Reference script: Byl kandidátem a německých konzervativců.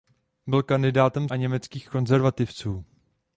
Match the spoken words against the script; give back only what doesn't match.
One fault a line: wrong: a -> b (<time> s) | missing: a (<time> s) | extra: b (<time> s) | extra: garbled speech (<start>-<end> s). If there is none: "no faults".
no faults